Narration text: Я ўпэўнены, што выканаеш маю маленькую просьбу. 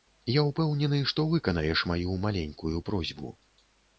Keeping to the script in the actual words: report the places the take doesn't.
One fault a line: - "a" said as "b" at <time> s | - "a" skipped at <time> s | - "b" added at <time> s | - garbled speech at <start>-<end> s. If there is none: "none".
none